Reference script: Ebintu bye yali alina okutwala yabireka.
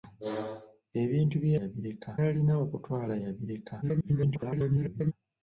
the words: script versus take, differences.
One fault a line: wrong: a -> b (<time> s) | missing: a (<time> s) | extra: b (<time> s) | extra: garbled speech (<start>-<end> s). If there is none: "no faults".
wrong: yali -> yabireka (1.6 s)
extra: garbled speech (3.8-5.1 s)